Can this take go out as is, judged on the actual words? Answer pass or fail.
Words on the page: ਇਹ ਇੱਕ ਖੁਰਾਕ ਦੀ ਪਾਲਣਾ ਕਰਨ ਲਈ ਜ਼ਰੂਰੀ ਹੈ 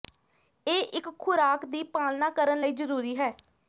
pass